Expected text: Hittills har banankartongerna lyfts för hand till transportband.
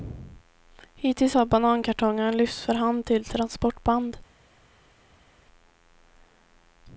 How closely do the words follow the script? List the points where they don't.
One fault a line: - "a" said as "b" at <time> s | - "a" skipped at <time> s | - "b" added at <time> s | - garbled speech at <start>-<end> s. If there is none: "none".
none